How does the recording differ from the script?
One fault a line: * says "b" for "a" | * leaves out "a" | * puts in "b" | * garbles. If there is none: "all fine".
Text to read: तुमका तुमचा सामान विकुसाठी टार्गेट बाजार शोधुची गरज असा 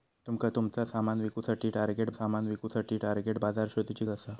* puts in "सामान विकुसाठी टार्गेट"
* leaves out "गरज"